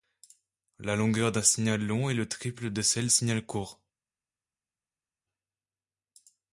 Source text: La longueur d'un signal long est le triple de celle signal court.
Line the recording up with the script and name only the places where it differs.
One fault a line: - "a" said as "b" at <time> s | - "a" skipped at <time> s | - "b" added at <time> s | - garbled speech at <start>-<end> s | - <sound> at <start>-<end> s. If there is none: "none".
none